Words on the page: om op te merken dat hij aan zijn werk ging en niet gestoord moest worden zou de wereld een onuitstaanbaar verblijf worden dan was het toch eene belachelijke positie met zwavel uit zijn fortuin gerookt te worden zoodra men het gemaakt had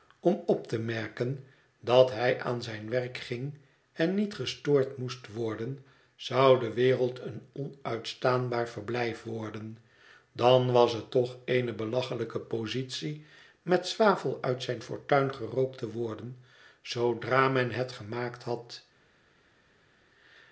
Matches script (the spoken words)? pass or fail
pass